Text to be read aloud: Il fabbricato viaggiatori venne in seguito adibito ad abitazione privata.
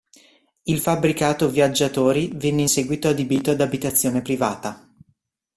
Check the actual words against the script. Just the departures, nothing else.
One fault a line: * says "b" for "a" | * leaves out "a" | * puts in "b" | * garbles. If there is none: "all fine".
all fine